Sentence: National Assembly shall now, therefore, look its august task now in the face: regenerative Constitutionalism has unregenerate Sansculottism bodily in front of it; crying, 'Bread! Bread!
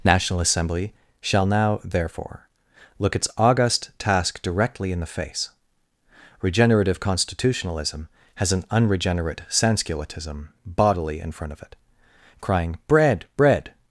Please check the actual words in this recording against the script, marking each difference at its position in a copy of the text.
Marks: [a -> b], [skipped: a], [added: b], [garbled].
National Assembly shall now, therefore, look its august task [now -> directly] in the face: regenerative Constitutionalism has [added: an] unregenerate Sansculottism bodily in front of it; crying, 'Bread! Bread!